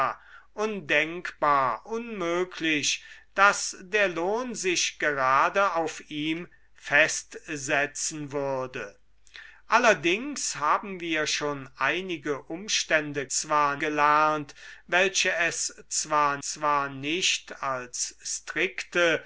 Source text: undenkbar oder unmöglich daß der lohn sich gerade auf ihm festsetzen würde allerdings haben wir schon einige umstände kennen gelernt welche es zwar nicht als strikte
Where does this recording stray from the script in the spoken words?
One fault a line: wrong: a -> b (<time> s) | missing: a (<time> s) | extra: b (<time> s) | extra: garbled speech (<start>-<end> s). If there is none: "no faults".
missing: oder (1.9 s)
wrong: kennen -> zwar (13.3 s)
extra: zwar (16.4 s)